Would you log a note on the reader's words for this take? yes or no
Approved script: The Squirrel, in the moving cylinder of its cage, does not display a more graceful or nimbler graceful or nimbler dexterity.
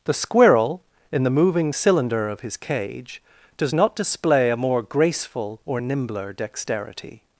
yes